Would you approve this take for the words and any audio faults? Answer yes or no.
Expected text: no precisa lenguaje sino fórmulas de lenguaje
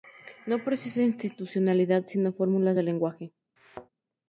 no